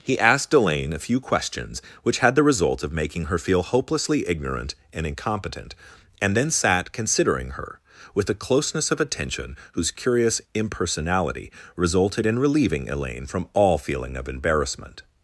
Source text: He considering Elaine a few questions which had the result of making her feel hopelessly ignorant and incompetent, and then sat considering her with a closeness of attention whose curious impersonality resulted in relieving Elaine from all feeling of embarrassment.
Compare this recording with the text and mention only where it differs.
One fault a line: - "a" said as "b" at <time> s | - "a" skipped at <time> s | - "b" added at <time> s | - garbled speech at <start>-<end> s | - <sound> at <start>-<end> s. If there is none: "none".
- "considering" said as "asked" at 0.2 s